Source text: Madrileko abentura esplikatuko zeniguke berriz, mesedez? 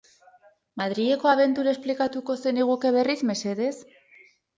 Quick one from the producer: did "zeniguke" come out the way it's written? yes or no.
yes